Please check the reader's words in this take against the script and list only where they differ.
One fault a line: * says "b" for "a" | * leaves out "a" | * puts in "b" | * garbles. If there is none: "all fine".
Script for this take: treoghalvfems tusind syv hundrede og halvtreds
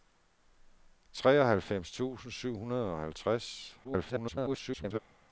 * garbles